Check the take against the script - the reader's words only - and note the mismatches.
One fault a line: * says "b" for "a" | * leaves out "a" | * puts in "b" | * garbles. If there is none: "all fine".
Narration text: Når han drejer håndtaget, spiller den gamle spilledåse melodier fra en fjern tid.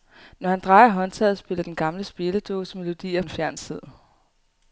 * leaves out "fra"